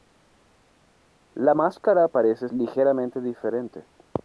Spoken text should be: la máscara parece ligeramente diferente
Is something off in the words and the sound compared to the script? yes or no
no